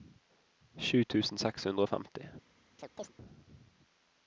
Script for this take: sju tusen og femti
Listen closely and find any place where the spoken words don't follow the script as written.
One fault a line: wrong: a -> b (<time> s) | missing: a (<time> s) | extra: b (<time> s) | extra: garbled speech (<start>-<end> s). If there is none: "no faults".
extra: seks hundre (1.4 s)